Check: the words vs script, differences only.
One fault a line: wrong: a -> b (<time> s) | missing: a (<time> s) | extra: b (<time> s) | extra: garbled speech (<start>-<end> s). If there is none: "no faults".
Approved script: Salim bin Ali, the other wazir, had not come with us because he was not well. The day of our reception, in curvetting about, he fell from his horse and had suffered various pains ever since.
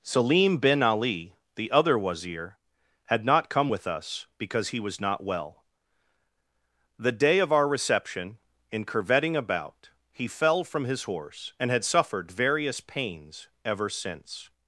no faults